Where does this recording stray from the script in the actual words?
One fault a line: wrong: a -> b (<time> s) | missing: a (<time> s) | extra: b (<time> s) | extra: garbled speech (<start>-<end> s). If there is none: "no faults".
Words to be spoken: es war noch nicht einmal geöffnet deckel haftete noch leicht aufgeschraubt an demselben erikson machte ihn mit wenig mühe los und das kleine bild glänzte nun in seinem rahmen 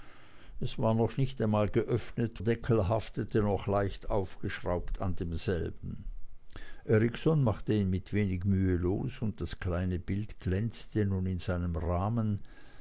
no faults